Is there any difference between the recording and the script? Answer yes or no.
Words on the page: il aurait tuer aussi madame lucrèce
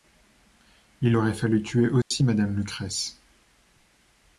yes